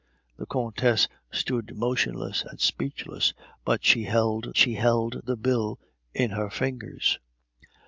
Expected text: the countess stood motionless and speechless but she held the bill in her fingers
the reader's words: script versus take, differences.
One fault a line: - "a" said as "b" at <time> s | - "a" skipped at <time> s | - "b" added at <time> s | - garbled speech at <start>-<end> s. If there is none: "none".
- "she held" added at 4.6 s